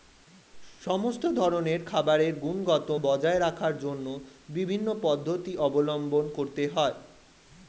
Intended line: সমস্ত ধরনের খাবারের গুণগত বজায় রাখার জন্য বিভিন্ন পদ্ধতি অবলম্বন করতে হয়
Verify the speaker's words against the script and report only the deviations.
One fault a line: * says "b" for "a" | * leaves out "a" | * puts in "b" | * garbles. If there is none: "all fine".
all fine